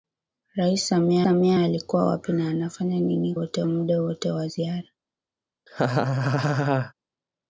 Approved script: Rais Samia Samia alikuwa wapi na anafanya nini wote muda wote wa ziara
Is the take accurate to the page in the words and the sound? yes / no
no